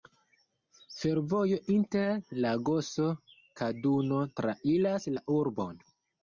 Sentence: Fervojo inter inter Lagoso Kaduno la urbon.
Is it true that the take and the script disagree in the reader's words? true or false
true